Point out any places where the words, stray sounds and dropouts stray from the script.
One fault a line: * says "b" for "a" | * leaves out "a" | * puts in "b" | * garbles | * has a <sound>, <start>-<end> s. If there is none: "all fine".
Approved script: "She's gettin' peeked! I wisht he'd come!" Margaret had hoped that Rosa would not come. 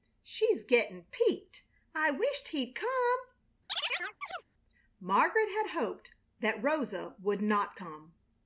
* has a chirp, 3.7-4.4 s